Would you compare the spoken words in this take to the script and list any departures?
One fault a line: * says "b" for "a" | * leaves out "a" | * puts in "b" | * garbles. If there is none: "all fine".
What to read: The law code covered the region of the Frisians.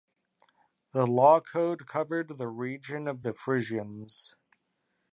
all fine